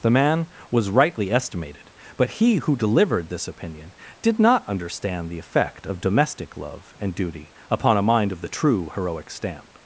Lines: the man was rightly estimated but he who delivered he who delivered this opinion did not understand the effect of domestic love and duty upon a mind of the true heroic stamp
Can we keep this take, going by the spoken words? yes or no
no